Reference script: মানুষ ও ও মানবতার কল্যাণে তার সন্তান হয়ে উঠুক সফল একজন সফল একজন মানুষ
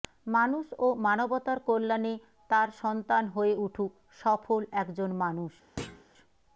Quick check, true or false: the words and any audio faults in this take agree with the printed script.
false